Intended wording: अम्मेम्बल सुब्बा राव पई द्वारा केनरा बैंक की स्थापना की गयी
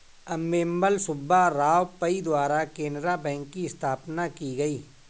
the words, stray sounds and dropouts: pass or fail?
pass